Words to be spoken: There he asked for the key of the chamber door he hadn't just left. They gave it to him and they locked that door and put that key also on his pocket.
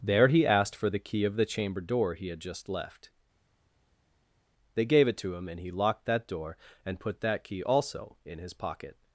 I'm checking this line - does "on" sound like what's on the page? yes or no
no